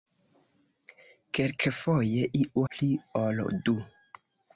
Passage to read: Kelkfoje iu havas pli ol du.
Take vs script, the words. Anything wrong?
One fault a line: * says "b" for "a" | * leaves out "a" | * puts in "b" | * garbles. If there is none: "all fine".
* leaves out "havas"